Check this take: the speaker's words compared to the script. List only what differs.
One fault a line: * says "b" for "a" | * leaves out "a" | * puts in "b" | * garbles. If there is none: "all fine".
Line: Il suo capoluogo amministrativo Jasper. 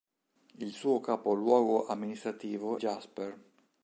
all fine